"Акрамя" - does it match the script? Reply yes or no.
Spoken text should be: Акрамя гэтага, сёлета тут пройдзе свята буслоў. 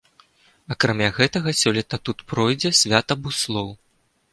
yes